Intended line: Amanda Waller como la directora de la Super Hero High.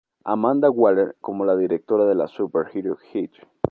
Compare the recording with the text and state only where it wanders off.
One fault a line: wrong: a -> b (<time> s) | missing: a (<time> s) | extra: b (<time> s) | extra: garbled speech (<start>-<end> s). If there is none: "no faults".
no faults